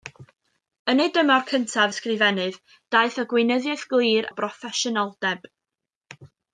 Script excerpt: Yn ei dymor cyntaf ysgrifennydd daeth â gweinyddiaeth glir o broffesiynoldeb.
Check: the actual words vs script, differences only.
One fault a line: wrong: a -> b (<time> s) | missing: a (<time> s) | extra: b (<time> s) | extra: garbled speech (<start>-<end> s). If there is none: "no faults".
no faults